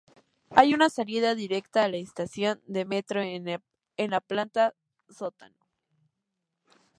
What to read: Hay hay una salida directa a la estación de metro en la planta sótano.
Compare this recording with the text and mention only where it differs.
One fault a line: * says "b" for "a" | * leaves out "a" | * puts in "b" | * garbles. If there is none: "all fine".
* leaves out "hay"